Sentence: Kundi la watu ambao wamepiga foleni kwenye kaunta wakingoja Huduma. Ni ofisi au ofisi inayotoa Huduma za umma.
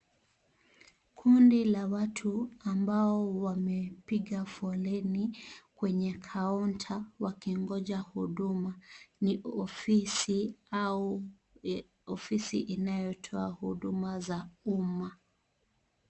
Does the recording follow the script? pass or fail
pass